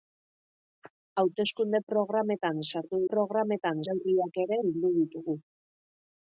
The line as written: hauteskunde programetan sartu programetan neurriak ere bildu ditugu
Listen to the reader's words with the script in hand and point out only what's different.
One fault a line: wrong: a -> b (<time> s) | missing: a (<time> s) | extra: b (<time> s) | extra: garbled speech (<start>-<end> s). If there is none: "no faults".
no faults